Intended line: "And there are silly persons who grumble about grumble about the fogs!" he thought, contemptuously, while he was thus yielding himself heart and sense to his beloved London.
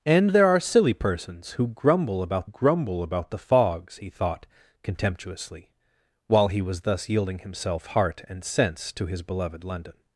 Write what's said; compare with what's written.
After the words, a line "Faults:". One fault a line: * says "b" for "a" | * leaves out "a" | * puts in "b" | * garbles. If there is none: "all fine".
"And there are silly persons who grumble about grumble about the fogs!" he thought, contemptuously, while he was thus yielding himself heart and sense to his beloved London.
Faults:
all fine